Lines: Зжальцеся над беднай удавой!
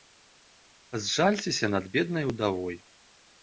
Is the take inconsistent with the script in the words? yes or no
no